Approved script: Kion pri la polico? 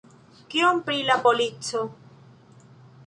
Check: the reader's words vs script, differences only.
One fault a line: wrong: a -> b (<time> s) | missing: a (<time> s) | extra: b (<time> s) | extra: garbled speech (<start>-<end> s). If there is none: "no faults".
no faults